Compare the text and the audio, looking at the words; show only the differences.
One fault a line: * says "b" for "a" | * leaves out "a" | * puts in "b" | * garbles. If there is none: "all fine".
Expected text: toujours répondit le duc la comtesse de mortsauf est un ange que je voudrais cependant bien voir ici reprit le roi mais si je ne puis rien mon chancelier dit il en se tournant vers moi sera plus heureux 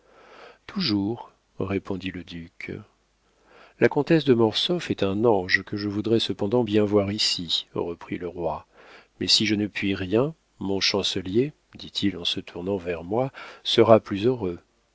all fine